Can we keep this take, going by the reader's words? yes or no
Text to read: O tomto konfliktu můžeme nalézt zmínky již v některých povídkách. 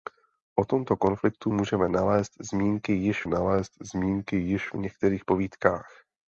no